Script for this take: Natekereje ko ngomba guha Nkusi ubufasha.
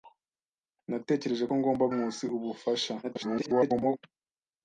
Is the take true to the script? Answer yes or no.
no